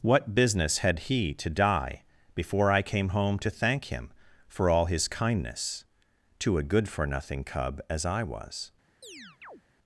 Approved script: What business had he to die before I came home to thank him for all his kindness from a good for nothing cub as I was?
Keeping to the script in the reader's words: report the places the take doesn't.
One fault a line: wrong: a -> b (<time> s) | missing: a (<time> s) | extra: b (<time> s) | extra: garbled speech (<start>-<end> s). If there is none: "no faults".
wrong: from -> to (6.4 s)